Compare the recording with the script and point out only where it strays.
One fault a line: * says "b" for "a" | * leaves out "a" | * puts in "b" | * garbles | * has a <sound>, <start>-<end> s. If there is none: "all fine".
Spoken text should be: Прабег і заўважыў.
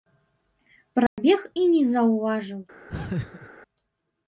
* has a dropout, 1.1-1.2 s
* puts in "не"
* has a laugh, 2.9-3.5 s